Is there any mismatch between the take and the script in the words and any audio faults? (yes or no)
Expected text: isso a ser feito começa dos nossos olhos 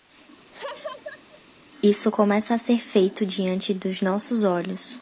yes